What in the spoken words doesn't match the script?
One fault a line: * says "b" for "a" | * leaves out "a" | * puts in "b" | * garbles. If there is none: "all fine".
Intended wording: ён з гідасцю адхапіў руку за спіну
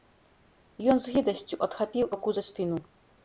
all fine